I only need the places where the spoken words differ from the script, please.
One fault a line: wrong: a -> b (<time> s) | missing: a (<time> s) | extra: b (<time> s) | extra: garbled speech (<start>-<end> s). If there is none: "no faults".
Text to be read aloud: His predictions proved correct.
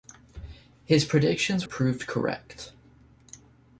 no faults